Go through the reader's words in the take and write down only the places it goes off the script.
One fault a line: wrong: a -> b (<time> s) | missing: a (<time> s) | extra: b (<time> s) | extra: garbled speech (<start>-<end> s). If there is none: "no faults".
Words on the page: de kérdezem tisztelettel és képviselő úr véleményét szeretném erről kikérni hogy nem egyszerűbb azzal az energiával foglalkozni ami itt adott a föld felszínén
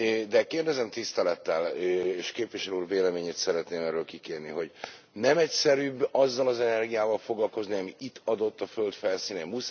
no faults